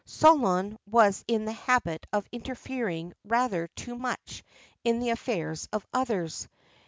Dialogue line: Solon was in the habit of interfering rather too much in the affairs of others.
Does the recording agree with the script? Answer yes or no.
yes